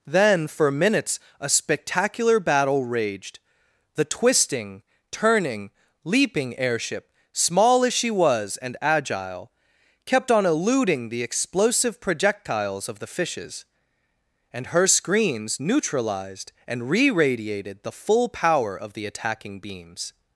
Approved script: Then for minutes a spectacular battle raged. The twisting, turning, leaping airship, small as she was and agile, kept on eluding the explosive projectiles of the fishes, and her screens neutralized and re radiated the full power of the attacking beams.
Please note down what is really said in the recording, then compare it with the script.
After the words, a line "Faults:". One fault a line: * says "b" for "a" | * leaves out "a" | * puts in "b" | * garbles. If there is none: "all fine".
Then for minutes a spectacular battle raged. The twisting, turning, leaping airship, small as she was and agile, kept on eluding the explosive projectiles of the fishes, and her screens neutralized and re radiated the full power of the attacking beams.
Faults:
all fine